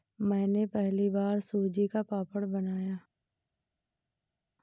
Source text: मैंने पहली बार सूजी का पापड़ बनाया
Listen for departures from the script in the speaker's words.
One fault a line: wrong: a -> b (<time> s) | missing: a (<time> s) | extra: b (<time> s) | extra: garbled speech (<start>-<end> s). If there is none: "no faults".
no faults